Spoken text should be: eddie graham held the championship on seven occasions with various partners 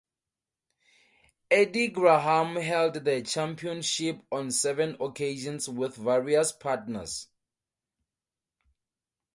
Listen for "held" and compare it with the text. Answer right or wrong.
right